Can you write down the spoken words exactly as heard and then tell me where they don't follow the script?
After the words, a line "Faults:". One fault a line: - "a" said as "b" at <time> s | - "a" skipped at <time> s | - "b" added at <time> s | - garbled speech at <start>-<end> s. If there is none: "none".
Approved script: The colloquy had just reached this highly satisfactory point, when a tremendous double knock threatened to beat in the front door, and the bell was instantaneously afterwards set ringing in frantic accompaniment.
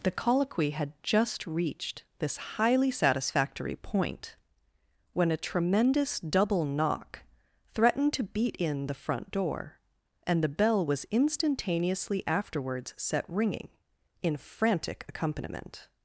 The colloquy had just reached this highly satisfactory point, when a tremendous double knock threatened to beat in the front door, and the bell was instantaneously afterwards set ringing in frantic accompaniment.
Faults:
none